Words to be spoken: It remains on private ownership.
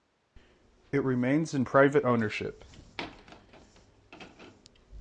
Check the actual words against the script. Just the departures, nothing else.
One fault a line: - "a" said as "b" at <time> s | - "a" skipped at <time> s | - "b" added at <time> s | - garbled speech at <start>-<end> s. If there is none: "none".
- "on" said as "in" at 1.5 s